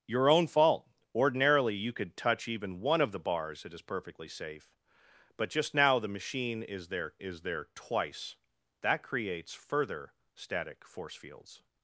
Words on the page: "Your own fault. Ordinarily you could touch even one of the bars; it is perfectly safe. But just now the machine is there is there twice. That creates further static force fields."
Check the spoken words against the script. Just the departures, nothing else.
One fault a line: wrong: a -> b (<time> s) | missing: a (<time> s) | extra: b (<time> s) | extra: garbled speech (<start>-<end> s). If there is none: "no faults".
no faults